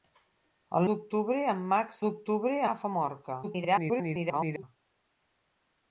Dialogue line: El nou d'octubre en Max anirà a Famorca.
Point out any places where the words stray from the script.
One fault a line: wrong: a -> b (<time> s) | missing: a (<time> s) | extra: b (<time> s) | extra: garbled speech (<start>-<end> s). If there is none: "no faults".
missing: nou (0.9 s)
wrong: anirà -> d'octubre (2.0 s)
extra: garbled speech (3.4-4.6 s)